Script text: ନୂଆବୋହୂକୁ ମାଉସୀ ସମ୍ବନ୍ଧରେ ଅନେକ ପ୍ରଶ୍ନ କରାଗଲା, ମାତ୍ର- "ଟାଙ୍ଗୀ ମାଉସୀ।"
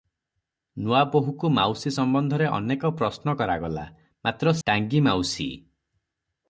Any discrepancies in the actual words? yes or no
no